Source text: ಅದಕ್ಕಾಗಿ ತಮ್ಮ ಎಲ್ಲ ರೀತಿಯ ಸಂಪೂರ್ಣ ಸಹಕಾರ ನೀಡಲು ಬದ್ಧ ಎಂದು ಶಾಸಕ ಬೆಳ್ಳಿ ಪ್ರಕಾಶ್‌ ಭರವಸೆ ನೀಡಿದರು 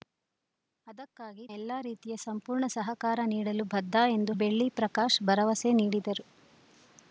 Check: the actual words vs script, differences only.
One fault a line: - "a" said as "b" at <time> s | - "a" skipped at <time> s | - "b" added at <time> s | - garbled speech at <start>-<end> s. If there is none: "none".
- "ತಮ್ಮ" skipped at 1.5 s
- "ಶಾಸಕ" skipped at 4.3 s